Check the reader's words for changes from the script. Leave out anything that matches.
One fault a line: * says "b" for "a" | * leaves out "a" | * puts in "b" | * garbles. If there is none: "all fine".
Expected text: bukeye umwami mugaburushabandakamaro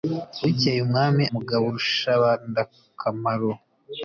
all fine